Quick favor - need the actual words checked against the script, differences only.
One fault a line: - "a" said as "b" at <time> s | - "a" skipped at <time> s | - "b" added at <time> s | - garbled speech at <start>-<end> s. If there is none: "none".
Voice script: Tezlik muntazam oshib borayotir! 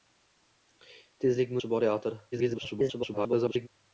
- "muntazam" skipped at 1.6 s
- garbled speech at 2.3-3.7 s